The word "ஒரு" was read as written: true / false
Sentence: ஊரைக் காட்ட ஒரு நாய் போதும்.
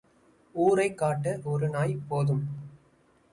true